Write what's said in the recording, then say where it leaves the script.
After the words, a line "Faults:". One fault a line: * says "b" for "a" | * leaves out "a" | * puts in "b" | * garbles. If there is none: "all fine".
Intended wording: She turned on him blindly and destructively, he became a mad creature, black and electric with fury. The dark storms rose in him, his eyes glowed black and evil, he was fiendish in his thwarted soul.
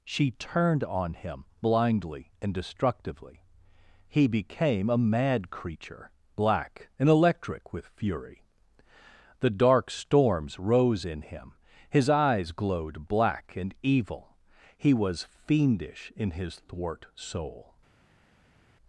She turned on him blindly and destructively, he became a mad creature, black and electric with fury. The dark storms rose in him, his eyes glowed black and evil, he was fiendish in his thwart soul.
Faults:
* says "thwart" for "thwarted"